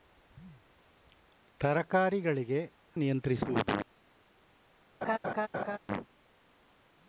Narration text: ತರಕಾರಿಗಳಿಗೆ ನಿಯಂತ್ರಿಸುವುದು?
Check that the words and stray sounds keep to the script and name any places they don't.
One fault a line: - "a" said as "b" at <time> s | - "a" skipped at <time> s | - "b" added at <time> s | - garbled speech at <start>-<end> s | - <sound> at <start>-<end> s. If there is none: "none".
- laugh at 5.0-5.8 s